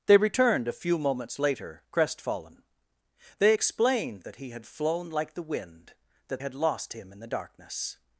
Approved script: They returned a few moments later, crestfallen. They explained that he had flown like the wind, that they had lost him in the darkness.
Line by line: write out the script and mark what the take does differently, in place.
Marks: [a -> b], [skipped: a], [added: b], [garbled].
They returned a few moments later, crestfallen. They explained that he had flown like the wind, that [skipped: they] had lost him in the darkness.